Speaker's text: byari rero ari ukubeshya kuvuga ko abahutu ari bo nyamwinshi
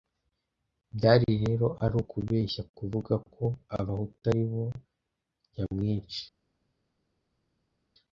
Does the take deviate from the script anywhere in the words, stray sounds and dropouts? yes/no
no